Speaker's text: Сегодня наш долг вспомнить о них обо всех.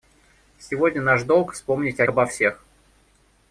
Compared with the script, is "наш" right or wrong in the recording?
right